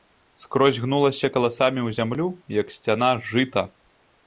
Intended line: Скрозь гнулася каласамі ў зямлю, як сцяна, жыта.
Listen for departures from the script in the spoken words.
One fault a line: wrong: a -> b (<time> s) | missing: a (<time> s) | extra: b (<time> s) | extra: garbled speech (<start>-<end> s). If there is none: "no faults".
no faults